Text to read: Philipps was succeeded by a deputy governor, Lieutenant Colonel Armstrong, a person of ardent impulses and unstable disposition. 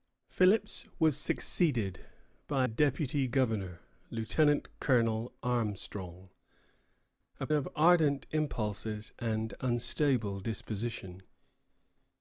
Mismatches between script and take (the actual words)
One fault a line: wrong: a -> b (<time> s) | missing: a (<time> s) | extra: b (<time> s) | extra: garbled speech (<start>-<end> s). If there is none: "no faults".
missing: a (2.7 s)
missing: person (7.5 s)